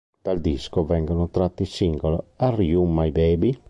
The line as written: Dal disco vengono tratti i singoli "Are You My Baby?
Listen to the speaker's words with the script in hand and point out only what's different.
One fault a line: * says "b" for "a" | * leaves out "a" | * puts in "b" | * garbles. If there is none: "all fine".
all fine